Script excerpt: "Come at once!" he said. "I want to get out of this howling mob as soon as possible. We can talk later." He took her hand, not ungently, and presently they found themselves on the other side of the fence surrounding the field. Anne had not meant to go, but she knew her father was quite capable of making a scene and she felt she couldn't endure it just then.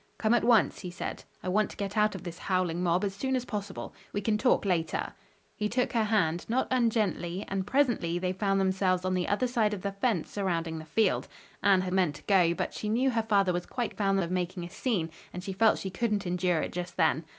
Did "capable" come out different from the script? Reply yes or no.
yes